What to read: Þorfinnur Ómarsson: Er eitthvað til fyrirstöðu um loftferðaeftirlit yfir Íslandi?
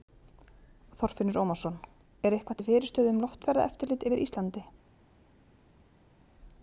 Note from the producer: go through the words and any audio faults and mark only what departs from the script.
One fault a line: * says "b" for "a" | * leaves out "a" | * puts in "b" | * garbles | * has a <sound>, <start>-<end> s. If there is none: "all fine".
all fine